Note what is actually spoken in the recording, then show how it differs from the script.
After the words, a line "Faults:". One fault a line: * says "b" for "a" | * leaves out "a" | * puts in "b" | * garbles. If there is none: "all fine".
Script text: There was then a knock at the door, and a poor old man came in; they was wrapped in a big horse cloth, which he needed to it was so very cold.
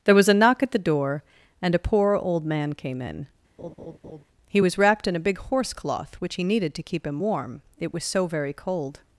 There was a knock at the door, and a poor old man came in; he was wrapped in a big horse cloth, which he needed to keep him warm, it was so very cold.
Faults:
* leaves out "then"
* says "he" for "they"
* puts in "keep him warm"